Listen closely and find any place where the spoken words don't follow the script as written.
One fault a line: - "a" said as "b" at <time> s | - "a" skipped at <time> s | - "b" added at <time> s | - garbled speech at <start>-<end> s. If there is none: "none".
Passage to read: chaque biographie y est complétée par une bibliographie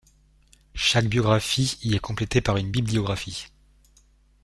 none